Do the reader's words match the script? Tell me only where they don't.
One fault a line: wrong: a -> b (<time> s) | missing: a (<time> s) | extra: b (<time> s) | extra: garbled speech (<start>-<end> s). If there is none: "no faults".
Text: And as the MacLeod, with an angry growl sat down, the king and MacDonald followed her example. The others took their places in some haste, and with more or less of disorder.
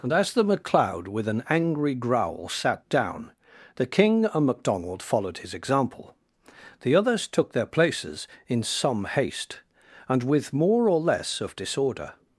wrong: her -> his (5.4 s)